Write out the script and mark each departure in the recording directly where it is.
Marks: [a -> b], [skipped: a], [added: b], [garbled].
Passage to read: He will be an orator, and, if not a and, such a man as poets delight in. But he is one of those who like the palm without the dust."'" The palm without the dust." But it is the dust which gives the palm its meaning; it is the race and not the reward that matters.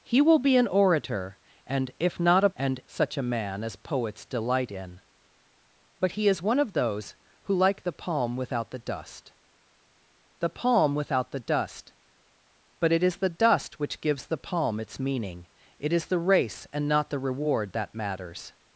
He will be an orator, and, if not a and, such a man as poets delight in. But he is one of those who like the palm without the dust."'" The palm without the dust." But it is the dust which gives the palm its meaning; it is the race and not the reward that matters.